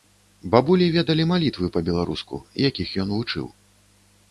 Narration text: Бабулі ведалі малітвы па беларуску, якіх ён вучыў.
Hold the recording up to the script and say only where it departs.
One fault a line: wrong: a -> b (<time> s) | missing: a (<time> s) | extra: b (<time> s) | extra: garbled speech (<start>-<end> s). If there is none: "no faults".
no faults